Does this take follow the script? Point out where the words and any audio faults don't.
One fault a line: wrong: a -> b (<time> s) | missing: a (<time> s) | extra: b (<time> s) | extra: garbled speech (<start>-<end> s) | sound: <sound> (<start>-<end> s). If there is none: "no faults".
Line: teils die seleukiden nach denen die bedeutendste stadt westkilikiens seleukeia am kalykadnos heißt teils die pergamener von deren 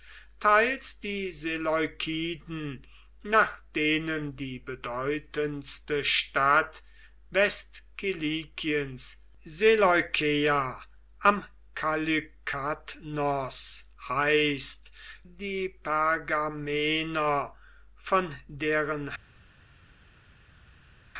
missing: teils (14.9 s)